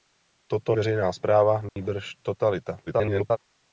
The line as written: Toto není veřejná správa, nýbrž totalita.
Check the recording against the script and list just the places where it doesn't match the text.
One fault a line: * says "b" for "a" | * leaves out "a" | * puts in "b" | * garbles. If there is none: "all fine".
* leaves out "není"
* garbles